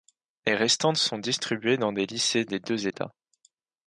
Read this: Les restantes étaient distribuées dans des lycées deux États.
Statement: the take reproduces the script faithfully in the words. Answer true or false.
false